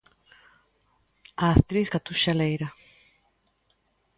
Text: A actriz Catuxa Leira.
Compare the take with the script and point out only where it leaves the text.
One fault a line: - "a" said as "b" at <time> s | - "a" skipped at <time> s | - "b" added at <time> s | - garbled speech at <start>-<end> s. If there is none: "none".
none